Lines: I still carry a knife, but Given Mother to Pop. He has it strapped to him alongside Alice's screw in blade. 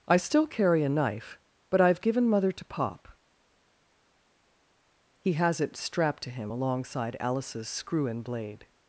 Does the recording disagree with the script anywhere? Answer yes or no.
yes